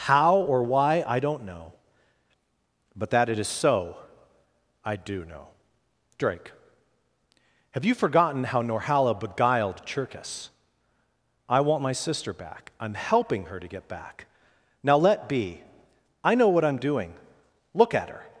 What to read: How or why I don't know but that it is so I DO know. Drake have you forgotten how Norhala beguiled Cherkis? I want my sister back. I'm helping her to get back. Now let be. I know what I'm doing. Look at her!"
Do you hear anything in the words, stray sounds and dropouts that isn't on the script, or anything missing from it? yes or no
no